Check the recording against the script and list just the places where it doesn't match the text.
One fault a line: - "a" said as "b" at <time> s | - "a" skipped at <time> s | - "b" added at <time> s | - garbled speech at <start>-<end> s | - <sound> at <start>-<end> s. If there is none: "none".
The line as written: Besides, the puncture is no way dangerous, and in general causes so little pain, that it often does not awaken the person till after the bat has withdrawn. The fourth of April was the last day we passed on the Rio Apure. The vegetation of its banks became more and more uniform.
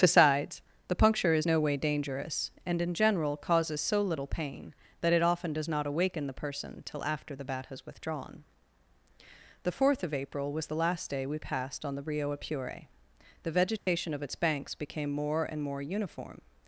- dropout at 13.8-13.9 s